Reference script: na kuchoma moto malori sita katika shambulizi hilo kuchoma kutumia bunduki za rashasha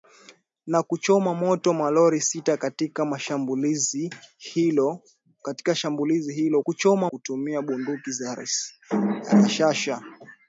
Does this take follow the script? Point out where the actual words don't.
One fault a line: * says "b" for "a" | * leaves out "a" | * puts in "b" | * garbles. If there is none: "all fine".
all fine